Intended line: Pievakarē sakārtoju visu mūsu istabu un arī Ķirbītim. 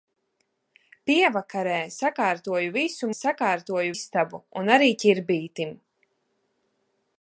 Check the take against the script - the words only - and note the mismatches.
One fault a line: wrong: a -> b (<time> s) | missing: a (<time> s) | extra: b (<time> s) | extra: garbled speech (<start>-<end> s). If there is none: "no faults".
wrong: mūsu -> sakārtoju (3.2 s)